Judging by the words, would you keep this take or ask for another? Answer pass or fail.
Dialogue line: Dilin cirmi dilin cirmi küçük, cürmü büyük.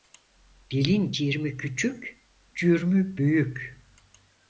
fail